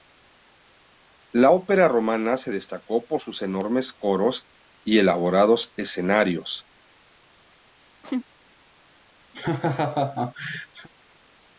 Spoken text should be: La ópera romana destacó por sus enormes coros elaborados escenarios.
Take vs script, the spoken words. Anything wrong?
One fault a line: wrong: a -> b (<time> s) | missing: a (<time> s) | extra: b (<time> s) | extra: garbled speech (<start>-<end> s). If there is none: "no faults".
extra: se (2.4 s)
extra: y (4.8 s)